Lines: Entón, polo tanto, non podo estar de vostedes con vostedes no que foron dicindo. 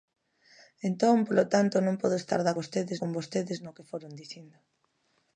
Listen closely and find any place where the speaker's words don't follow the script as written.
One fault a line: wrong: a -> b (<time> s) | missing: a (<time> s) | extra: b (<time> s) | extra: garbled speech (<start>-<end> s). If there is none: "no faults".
no faults